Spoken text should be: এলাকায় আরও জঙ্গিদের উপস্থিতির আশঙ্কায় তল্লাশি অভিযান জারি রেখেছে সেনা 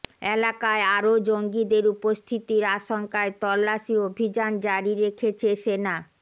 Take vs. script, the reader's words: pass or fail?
pass